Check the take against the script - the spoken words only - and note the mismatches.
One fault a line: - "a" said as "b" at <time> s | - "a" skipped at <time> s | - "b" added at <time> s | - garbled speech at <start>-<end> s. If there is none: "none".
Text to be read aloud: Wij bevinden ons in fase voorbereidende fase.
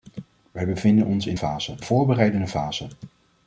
none